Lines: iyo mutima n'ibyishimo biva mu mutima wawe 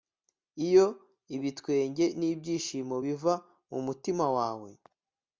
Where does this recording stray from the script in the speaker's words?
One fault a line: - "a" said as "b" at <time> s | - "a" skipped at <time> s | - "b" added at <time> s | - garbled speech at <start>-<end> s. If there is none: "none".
- "mutima" said as "ibitwenge" at 1.4 s